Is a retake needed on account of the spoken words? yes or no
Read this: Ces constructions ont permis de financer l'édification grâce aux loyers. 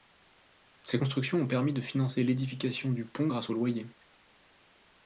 yes